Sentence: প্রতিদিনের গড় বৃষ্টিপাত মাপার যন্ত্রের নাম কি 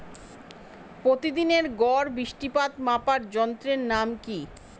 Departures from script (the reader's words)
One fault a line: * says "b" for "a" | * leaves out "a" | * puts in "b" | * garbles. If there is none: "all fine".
all fine